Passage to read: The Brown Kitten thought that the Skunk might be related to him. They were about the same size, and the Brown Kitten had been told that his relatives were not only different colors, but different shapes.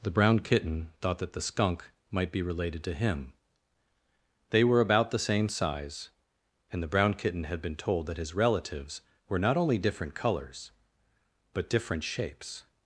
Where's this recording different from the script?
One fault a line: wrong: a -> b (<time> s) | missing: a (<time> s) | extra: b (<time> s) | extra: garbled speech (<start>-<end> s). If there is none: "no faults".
no faults